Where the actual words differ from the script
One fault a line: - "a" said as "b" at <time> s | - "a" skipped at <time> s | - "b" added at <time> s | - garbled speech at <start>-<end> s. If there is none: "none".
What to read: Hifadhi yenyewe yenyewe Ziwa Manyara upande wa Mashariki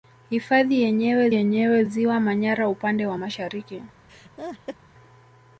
none